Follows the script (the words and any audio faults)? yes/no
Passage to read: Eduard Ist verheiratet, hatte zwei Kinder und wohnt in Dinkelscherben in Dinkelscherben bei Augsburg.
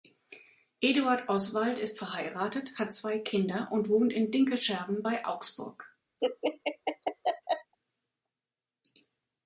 no